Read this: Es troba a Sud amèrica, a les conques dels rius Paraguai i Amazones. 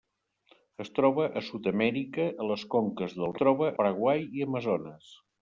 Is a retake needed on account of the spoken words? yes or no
yes